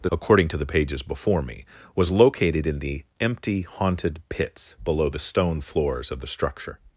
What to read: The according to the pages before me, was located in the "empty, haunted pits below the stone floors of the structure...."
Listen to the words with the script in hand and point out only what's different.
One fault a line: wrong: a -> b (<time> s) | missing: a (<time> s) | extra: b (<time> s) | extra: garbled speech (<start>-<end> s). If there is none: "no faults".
no faults